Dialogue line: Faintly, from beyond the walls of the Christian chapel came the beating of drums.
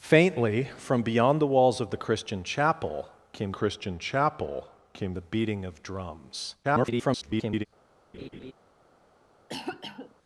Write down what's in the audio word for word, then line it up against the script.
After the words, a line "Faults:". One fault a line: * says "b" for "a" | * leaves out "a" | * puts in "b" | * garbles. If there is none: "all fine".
Faintly, from beyond the walls of the Christian chapel came Christian chapel came the beating of drums. [garbled]
Faults:
* puts in "Christian chapel came"
* garbles